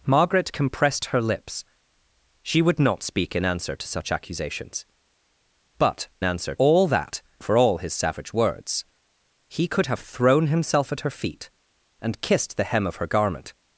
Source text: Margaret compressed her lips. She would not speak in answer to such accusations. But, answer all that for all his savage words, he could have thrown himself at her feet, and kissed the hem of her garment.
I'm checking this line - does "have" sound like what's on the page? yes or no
yes